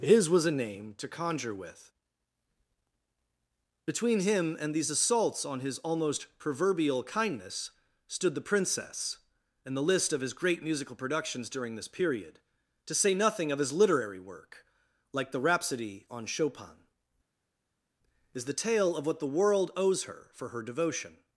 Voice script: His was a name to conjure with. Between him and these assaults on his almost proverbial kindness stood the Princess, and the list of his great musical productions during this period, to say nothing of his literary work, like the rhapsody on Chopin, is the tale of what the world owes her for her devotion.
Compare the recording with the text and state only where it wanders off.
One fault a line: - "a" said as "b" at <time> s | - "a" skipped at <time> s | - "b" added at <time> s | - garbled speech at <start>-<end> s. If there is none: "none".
none